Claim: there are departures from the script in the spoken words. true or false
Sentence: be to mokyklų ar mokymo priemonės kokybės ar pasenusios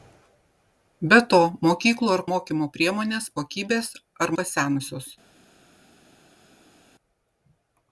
false